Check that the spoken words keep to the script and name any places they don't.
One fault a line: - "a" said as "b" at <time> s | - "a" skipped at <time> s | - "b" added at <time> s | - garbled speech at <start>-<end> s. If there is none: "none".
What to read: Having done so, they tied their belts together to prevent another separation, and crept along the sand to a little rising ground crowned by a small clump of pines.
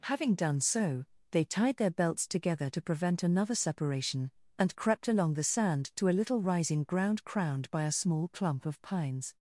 none